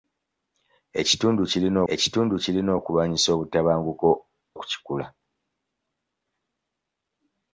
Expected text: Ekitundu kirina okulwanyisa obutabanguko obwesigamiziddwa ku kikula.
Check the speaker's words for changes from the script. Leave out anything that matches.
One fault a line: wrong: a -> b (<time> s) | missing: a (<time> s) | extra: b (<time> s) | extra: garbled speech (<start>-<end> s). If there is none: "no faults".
extra: ekitundu kirina (1.9 s)
missing: obwesigamiziddwa (4.1 s)